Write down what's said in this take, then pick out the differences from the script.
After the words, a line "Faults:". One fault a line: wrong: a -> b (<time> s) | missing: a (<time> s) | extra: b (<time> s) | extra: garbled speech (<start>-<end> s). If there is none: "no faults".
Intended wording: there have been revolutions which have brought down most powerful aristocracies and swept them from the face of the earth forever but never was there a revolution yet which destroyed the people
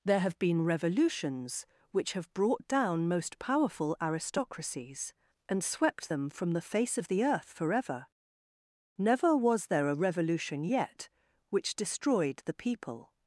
there have been revolutions which have brought down most powerful aristocracies and swept them from the face of the earth forever never was there a revolution yet which destroyed the people
Faults:
missing: but (8.1 s)